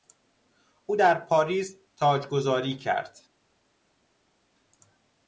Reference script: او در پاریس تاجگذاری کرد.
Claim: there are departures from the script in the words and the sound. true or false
false